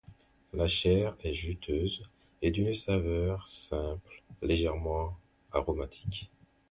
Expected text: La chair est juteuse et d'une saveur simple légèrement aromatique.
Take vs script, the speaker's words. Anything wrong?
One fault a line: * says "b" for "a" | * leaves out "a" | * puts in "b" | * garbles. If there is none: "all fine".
all fine